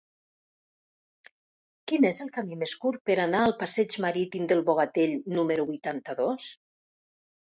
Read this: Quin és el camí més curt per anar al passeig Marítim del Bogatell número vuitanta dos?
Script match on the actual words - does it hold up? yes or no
yes